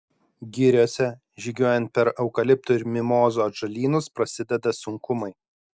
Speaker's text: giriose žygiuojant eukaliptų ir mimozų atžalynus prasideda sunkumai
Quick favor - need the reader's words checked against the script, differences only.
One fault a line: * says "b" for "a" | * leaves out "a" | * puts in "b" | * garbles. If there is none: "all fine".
* puts in "per"